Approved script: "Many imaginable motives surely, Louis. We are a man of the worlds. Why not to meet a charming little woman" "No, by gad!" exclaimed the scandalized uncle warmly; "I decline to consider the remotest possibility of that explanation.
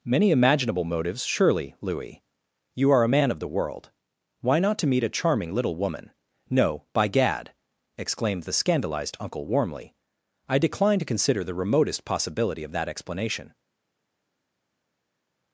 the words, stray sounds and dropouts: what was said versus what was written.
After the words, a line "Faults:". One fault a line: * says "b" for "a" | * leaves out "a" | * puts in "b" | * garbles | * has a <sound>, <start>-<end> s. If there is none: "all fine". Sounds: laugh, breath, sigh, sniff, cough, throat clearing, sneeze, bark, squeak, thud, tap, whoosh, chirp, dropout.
"Many imaginable motives surely, Louis. You are a man of the world. Why not to meet a charming little woman" "No, by gad!" exclaimed the scandalized uncle warmly; "I decline to consider the remotest possibility of that explanation.
Faults:
* says "You" for "We"
* says "world" for "worlds"